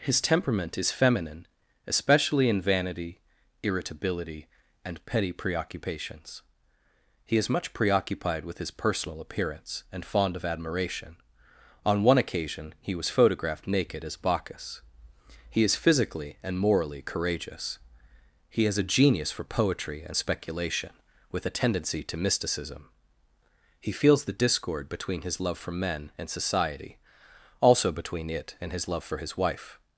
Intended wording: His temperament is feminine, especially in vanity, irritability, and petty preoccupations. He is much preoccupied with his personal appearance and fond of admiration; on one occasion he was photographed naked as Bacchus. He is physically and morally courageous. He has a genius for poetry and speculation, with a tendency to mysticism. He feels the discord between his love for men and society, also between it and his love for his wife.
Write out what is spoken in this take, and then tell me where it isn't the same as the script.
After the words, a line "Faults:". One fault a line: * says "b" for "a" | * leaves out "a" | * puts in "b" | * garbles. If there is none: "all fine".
His temperament is feminine, especially in vanity, irritability, and petty preoccupations. He is much preoccupied with his personal appearance and fond of admiration; on one occasion he was photographed naked as Bacchus. He is physically and morally courageous. He has a genius for poetry and speculation, with a tendency to mysticism. He feels the discord between his love for men and society, also between it and his love for his wife.
Faults:
all fine